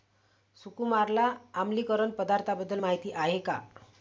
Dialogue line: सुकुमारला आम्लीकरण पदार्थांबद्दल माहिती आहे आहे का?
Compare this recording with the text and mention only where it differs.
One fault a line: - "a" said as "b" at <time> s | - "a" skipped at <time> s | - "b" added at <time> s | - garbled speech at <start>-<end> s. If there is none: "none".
- "आहे" skipped at 3.4 s